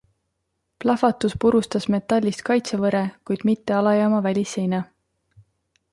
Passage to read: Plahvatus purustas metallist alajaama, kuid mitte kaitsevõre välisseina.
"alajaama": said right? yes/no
no